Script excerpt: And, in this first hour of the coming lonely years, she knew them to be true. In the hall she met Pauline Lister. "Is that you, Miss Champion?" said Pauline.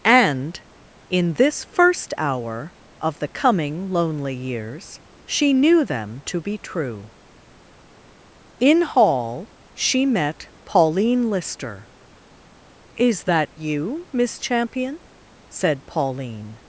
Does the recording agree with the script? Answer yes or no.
no